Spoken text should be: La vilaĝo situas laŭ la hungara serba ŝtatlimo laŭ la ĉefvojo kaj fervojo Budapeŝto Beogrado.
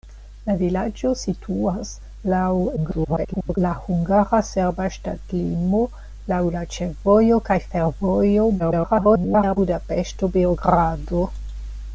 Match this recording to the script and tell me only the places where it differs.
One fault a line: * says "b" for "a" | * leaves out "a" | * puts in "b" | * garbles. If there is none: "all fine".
* garbles
* garbles